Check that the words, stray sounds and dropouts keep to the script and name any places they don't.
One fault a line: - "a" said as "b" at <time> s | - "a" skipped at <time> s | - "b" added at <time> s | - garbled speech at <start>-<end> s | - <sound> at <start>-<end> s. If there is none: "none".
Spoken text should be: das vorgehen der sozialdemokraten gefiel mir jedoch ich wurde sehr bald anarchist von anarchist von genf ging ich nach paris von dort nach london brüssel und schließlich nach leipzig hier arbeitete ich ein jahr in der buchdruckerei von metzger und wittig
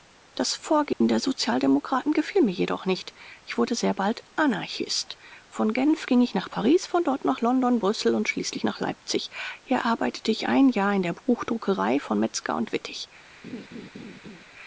- dropout at 0.9-1.0 s
- "nicht" added at 2.9 s
- "anarchist von" skipped at 5.7 s
- laugh at 13.4-14.4 s